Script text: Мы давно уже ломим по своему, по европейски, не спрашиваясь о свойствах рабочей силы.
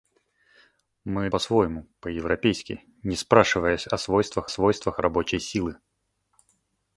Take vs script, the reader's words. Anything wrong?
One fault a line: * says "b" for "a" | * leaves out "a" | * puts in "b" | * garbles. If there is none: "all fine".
* leaves out "давно уже ломим"
* puts in "свойствах"